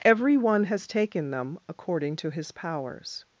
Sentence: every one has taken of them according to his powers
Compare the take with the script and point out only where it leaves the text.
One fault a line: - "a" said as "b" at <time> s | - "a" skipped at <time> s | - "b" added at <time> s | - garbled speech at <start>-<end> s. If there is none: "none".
- "of" skipped at 1.3 s